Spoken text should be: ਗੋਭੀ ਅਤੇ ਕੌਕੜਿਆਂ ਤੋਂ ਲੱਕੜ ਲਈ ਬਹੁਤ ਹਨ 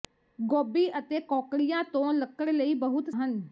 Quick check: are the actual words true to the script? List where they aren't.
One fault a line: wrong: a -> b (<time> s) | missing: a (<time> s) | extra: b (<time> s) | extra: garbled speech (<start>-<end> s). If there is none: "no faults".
no faults